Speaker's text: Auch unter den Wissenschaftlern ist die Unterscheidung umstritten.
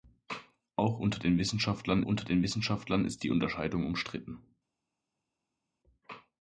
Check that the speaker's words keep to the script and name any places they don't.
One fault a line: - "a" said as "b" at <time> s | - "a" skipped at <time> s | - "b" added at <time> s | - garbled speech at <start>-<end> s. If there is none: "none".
- "unter den Wissenschaftlern" added at 2.0 s